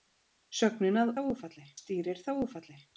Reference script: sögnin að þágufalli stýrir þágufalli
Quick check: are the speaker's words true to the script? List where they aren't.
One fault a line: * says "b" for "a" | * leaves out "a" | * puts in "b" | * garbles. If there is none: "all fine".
all fine